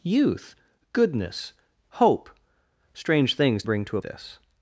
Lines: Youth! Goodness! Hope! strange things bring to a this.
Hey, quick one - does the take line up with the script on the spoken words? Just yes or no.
yes